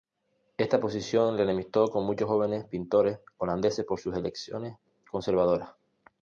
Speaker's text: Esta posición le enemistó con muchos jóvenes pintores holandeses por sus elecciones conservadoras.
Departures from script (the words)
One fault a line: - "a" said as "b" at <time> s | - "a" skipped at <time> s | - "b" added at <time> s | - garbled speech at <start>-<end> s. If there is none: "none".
none